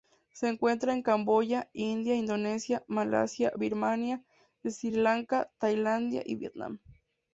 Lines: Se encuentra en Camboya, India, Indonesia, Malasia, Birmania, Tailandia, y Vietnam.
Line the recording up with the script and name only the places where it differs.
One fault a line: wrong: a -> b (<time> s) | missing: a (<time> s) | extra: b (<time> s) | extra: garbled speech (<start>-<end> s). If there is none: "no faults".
extra: Sri Lanka (4.6 s)